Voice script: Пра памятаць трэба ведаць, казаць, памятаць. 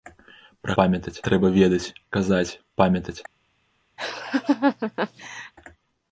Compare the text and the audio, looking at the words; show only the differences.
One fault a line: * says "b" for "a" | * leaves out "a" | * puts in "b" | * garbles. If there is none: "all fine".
all fine